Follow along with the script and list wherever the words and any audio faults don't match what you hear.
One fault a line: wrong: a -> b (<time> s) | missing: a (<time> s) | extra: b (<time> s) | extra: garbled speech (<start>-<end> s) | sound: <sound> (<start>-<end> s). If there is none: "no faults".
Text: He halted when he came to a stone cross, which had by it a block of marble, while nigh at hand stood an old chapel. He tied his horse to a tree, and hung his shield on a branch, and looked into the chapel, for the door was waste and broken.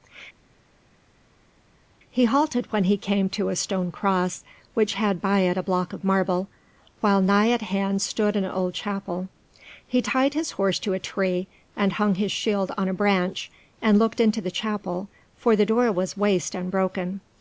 no faults